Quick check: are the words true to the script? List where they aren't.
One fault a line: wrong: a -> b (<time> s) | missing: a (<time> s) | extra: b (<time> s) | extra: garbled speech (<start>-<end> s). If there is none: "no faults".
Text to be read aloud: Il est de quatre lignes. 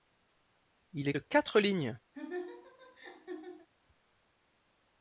no faults